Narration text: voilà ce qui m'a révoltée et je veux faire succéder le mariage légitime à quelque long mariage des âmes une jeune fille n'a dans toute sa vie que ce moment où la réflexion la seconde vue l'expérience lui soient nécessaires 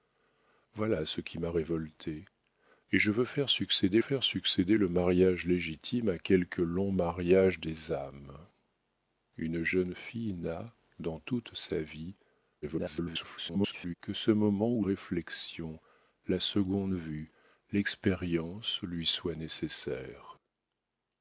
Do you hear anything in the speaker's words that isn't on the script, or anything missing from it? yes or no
yes